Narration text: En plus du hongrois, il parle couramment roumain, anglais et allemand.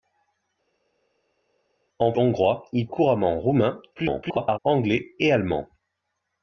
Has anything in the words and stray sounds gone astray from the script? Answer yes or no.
yes